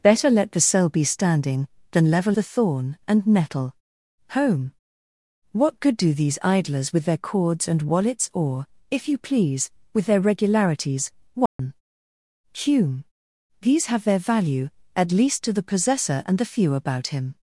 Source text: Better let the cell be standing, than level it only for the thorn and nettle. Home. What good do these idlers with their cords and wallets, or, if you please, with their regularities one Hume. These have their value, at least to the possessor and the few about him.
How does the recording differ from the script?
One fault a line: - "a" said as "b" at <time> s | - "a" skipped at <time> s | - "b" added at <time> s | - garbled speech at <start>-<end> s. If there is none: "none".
- "it only for" skipped at 2.4 s